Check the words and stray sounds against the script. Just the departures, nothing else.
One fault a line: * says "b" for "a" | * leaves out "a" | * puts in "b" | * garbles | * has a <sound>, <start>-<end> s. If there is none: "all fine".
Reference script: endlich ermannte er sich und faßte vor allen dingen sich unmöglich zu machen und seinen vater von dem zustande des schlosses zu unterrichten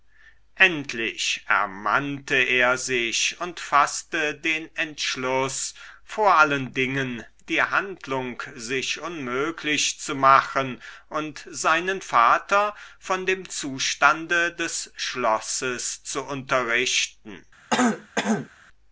* puts in "den entschluß"
* puts in "die handlung"
* has a throat clearing, 17.7-18.5 s